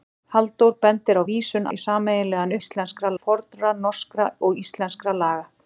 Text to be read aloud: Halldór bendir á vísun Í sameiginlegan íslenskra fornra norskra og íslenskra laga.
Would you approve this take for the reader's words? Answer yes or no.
yes